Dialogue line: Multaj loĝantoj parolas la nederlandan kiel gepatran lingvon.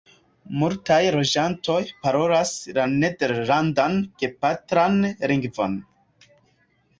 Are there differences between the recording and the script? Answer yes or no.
yes